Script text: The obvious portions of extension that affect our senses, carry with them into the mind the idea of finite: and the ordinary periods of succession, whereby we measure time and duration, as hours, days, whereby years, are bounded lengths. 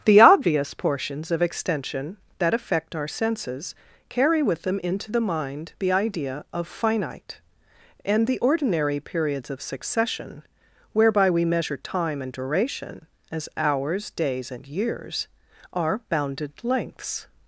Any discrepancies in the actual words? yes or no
yes